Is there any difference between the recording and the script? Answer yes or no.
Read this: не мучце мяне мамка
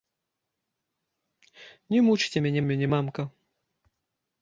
yes